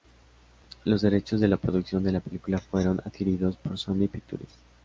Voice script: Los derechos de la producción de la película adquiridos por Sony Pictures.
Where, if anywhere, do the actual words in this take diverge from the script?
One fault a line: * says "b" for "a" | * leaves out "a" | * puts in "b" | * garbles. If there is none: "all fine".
* puts in "fueron"